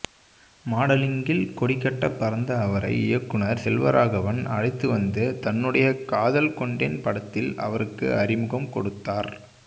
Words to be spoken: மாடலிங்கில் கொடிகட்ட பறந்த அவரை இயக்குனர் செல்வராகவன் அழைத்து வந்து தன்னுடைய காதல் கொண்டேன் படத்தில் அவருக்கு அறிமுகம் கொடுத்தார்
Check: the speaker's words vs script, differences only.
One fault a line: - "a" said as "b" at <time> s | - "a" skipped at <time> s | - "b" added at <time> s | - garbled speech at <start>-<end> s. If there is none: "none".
none